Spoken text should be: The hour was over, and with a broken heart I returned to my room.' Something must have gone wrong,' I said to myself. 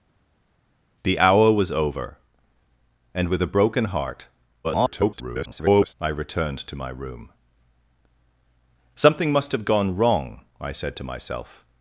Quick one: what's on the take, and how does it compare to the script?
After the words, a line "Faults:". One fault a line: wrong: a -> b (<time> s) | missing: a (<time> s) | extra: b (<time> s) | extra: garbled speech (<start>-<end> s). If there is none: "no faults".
The hour was over, and with a broken heart [garbled] I returned to my room.' Something must have gone wrong,' I said to myself.
Faults:
extra: garbled speech (4.6-5.9 s)